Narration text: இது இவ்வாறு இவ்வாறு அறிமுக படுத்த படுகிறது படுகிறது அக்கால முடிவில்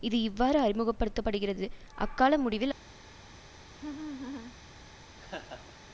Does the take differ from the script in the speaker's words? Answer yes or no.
yes